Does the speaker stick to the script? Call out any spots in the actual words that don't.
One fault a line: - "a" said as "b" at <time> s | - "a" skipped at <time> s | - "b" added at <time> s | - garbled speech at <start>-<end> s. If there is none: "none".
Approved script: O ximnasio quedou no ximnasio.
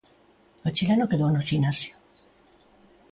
- "ximnasio" said as "chileno" at 0.8 s